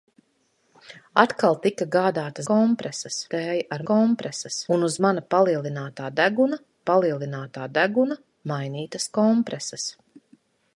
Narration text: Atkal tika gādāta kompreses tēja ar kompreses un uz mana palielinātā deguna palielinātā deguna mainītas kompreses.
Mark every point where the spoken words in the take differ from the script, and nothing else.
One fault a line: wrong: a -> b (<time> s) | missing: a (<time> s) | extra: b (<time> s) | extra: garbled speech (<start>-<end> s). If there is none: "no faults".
no faults